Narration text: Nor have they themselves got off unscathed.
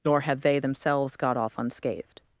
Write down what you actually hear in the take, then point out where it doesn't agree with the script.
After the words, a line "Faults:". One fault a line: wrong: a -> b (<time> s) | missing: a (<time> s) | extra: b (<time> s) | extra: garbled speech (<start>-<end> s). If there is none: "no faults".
Nor have they themselves got off unscathed.
Faults:
no faults